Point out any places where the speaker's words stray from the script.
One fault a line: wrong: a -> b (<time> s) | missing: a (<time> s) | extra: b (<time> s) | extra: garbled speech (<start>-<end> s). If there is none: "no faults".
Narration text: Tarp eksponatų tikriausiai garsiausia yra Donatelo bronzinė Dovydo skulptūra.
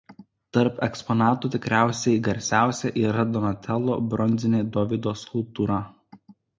no faults